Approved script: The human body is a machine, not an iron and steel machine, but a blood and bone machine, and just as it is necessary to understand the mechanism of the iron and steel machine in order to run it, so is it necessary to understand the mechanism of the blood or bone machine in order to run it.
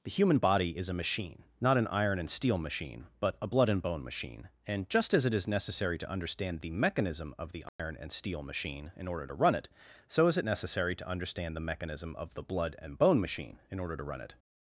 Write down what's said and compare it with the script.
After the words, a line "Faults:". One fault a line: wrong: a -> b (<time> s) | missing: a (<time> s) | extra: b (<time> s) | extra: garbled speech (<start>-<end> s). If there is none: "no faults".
The human body is a machine, not an iron and steel machine, but a blood and bone machine, and just as it is necessary to understand the mechanism of the iron and steel machine in order to run it, so is it necessary to understand the mechanism of the blood and bone machine in order to run it.
Faults:
wrong: or -> and (12.8 s)